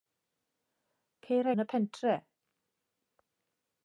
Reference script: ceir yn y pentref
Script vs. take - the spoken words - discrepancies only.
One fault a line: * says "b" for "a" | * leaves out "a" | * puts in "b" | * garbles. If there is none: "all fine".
all fine